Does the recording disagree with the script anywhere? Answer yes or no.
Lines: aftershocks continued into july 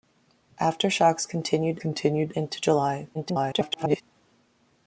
yes